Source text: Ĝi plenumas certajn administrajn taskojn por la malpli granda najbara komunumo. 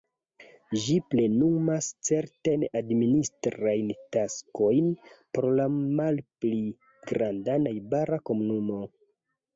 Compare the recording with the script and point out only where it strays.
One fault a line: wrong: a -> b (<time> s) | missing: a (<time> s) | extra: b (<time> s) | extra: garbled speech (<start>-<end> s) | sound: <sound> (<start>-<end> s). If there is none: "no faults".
no faults